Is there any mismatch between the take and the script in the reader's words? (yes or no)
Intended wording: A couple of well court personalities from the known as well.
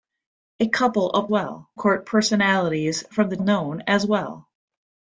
no